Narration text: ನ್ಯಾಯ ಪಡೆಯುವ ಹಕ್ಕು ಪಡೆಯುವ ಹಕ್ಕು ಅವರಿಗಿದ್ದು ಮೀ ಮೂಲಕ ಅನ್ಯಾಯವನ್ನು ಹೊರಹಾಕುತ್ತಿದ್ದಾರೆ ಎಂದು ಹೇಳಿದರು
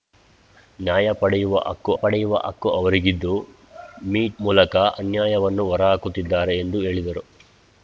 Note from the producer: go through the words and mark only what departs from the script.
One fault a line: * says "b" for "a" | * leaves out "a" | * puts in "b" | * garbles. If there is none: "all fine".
all fine